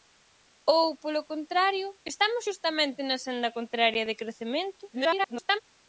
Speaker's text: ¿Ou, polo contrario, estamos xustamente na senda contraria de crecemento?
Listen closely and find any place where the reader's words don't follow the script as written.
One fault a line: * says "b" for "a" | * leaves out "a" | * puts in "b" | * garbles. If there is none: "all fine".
* garbles